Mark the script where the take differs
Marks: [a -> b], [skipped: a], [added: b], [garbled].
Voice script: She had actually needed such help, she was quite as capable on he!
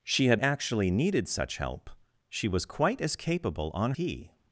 She had actually needed such help, she was quite as capable on he!